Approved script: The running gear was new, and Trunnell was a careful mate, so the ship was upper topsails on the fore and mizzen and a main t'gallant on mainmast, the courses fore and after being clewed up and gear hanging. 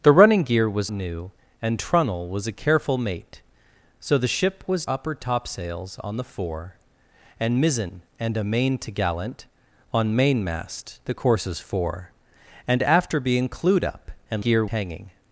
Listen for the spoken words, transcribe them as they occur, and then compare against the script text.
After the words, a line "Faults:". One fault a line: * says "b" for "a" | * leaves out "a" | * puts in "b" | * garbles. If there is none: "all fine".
The running gear was new, and Trunnell was a careful mate, so the ship was upper topsails on the fore and mizzen and a main t'gallant on mainmast, the courses fore and after being clewed up and gear hanging.
Faults:
all fine